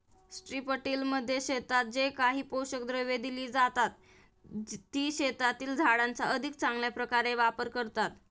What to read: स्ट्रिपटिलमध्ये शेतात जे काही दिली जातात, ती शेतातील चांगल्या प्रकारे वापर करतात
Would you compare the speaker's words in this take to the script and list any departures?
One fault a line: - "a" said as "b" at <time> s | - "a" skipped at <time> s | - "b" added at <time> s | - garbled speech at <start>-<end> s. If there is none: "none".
- "पोषक द्रव्ये" added at 2.4 s
- "झाडांचा अधिक" added at 5.8 s